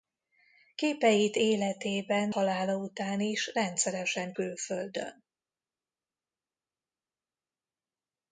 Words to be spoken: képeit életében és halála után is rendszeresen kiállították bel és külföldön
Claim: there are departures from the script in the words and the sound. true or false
true